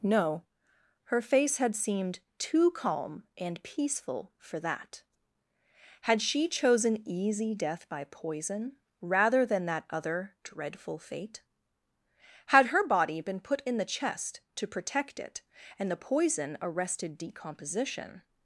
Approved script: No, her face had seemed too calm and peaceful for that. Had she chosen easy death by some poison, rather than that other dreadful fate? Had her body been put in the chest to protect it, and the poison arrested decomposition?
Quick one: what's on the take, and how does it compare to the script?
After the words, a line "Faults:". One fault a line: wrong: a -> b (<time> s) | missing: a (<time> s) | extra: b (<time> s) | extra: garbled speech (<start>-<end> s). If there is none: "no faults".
No, her face had seemed too calm and peaceful for that. Had she chosen easy death by poison, rather than that other dreadful fate? Had her body been put in the chest to protect it, and the poison arrested decomposition?
Faults:
missing: some (8.1 s)